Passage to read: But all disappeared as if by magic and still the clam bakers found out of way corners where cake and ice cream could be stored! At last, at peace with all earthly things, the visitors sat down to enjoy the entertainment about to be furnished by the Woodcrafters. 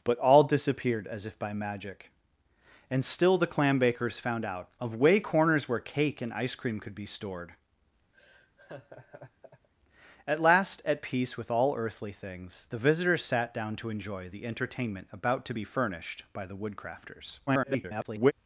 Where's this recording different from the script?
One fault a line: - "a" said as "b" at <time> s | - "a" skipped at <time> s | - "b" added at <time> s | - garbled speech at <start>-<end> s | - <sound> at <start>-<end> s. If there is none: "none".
- laugh at 8.1-9.7 s
- garbled speech at 17.5-18.3 s